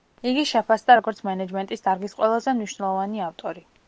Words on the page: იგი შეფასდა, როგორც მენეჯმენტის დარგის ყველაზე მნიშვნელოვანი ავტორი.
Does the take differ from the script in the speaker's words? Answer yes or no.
no